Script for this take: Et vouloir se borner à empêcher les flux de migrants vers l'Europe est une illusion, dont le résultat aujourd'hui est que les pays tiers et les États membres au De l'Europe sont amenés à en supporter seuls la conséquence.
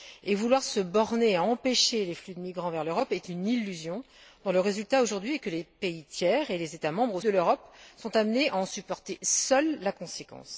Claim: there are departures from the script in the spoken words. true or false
false